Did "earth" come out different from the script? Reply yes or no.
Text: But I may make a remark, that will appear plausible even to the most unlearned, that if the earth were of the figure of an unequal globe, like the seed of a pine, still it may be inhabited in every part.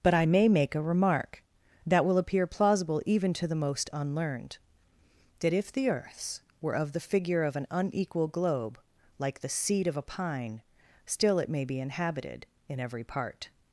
yes